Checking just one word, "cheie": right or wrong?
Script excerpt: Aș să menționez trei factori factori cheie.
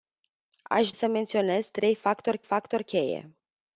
right